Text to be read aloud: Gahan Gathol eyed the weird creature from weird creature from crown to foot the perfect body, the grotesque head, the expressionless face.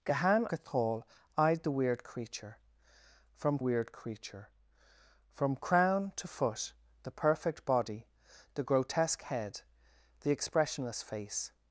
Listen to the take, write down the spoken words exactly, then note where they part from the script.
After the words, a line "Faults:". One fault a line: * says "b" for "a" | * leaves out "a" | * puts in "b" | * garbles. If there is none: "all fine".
Gahan Gathol eyed the weird creature from weird creature from crown to foot the perfect body, the grotesque head, the expressionless face.
Faults:
all fine